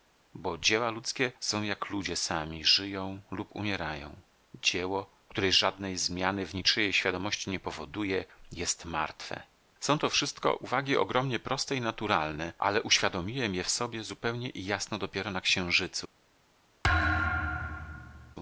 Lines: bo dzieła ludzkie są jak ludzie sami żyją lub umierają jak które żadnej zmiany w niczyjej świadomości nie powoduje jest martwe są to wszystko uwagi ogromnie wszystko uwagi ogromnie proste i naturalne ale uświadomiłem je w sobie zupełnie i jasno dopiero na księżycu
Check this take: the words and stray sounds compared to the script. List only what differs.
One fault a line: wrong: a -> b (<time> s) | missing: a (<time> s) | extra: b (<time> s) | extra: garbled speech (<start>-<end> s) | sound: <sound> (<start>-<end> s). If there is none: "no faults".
wrong: jak -> dzieło (4.5 s)
missing: wszystko uwagi ogromnie (11.4 s)
sound: thud (16.8-18.4 s)